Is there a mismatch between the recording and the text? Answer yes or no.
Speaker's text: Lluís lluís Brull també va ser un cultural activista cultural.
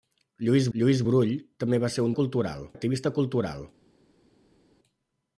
no